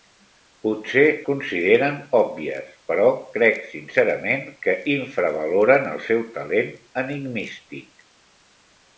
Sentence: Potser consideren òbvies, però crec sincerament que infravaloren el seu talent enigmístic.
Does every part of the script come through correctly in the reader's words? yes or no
yes